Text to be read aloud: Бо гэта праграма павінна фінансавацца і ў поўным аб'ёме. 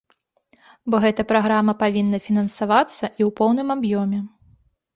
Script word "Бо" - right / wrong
right